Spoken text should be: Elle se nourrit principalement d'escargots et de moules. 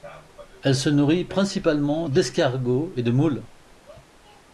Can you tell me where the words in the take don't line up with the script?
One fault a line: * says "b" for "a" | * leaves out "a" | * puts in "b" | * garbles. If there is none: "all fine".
all fine